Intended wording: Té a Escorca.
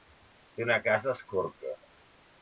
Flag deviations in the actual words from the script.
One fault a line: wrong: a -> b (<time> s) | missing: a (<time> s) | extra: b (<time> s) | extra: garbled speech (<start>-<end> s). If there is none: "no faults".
extra: una casa (0.7 s)